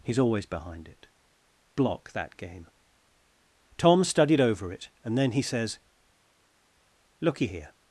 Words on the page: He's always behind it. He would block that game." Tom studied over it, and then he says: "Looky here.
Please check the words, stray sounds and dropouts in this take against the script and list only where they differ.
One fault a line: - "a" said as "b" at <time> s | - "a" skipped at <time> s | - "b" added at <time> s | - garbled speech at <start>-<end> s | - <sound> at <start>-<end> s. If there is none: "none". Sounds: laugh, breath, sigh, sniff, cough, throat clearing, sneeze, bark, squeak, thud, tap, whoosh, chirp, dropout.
- "He would" skipped at 1.1 s